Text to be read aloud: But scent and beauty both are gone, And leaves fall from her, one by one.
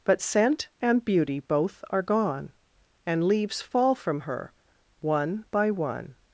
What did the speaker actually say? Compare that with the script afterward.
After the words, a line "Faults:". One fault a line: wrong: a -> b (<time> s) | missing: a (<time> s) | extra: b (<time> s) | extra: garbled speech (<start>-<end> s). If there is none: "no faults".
But scent and beauty both are gone, And leaves fall from her, one by one.
Faults:
no faults